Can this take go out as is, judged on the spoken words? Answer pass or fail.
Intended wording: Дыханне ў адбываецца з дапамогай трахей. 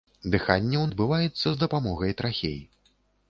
pass